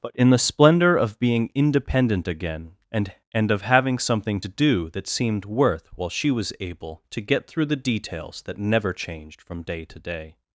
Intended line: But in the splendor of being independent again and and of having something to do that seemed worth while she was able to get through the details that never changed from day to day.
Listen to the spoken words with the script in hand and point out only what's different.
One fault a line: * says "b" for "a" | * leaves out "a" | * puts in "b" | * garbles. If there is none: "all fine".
all fine